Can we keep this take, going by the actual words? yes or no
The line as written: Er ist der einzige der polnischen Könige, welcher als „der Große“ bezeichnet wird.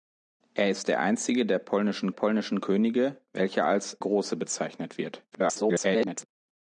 no